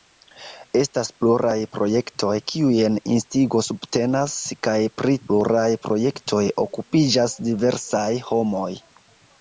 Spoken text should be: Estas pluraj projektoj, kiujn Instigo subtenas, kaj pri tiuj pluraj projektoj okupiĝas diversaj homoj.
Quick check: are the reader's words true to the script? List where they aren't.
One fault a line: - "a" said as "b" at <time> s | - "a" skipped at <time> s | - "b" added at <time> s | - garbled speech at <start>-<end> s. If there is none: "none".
- "tiuj" skipped at 5.2 s